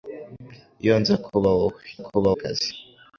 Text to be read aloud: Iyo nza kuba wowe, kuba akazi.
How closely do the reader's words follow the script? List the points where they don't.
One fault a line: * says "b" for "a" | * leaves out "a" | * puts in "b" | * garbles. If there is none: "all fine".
all fine